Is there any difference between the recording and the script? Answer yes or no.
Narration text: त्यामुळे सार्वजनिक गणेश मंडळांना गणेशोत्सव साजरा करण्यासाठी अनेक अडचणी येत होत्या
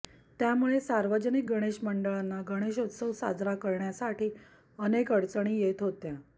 no